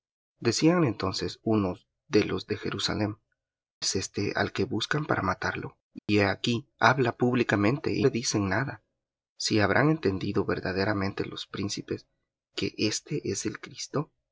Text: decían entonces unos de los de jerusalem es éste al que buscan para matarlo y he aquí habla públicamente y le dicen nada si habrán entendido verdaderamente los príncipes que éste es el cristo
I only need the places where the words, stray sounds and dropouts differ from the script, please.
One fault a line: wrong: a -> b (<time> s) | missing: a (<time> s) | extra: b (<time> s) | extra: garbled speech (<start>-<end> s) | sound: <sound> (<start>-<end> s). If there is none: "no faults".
sound: dropout (6.0-6.1 s)